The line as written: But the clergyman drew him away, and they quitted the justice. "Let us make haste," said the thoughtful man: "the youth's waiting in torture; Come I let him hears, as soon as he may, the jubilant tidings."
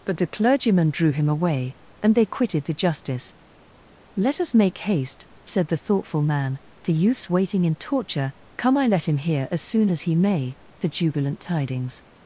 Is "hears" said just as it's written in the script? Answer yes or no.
no